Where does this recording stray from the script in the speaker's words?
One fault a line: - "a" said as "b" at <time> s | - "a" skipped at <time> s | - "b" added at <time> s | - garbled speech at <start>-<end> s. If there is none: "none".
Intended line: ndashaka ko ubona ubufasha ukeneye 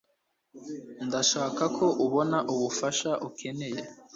none